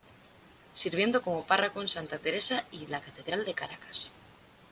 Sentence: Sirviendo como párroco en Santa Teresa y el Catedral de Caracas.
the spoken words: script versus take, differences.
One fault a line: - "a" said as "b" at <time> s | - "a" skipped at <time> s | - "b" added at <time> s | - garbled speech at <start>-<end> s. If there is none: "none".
- "el" said as "la" at 2.9 s